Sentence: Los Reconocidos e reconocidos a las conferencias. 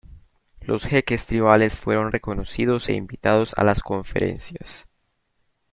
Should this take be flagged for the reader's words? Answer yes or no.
yes